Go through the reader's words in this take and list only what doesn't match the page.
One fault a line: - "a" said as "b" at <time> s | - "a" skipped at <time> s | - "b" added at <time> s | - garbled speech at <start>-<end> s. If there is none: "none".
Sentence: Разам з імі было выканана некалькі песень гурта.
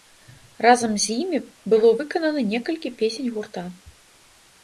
none